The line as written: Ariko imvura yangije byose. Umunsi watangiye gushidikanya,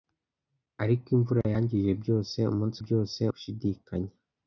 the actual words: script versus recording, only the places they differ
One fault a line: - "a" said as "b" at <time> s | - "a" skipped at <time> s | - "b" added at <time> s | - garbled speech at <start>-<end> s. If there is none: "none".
- "watangiye" said as "byose" at 2.8 s